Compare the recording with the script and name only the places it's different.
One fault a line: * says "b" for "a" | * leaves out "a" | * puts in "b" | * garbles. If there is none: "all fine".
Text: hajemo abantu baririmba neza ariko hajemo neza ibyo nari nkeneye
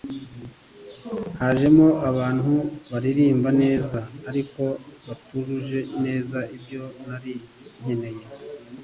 * says "batujuje" for "hajemo"